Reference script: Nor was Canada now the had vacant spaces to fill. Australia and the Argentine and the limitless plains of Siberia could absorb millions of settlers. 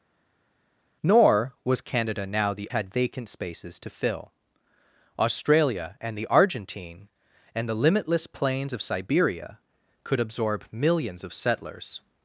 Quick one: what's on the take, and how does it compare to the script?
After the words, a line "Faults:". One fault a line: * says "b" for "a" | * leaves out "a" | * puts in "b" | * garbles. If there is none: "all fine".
Nor was Canada now the had vacant spaces to fill. Australia and the Argentine and the limitless plains of Siberia could absorb millions of settlers.
Faults:
all fine